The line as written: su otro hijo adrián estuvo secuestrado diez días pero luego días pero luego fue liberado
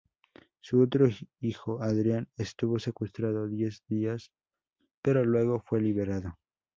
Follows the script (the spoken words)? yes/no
no